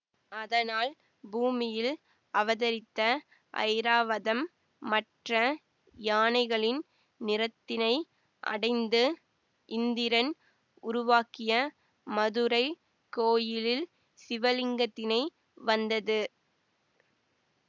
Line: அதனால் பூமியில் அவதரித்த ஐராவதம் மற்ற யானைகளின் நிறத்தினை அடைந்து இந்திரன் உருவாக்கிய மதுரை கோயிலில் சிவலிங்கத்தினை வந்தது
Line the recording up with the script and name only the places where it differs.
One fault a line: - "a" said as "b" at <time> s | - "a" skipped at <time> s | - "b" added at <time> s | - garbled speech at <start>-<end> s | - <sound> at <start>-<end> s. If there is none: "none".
none